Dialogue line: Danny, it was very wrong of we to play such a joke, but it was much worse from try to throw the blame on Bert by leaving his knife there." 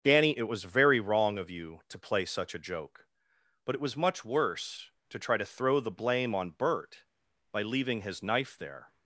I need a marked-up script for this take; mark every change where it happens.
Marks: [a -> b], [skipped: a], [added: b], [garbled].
Danny, it was very wrong of [we -> you] to play such a joke, but it was much worse [from -> to] try to throw the blame on Bert by leaving his knife there."